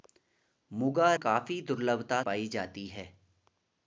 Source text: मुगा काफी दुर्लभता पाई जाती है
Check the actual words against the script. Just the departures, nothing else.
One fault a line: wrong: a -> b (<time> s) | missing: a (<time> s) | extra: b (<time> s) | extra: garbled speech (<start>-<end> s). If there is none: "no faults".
no faults